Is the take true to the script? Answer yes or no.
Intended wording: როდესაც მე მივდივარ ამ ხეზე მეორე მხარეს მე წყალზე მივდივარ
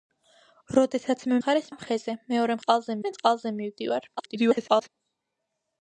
no